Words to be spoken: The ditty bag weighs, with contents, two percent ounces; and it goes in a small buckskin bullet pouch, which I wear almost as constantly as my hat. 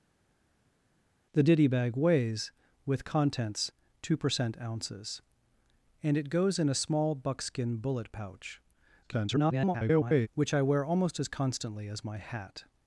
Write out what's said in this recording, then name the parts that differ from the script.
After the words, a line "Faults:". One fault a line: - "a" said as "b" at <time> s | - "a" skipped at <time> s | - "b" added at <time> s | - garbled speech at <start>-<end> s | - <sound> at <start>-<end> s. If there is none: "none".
The ditty bag weighs, with contents, two percent ounces; and it goes in a small buckskin bullet pouch, [garbled] which I wear almost as constantly as my hat.
Faults:
- garbled speech at 9.0-10.3 s